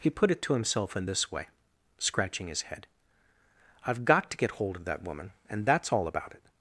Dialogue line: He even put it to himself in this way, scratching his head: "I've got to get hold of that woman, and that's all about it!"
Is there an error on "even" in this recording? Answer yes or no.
yes